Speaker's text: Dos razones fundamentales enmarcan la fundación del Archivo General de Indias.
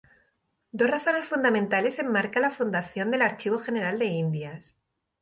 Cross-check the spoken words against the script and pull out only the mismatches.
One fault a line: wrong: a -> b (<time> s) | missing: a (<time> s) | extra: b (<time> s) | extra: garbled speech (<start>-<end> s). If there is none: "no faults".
no faults